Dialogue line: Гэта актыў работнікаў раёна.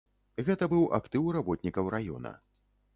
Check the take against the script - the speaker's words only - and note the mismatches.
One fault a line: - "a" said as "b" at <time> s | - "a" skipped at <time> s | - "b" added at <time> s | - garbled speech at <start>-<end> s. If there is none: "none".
- "быў" added at 0.7 s